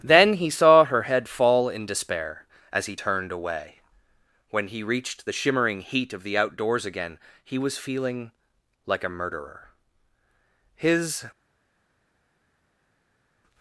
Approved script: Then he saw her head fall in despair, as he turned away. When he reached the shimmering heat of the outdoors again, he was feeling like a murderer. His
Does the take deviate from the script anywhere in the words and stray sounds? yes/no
no